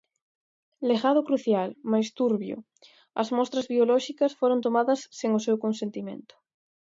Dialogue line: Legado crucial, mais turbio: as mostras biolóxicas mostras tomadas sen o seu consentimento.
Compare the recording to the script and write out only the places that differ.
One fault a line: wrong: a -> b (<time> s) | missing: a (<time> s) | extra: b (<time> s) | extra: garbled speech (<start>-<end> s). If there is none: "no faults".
wrong: mostras -> foron (4.4 s)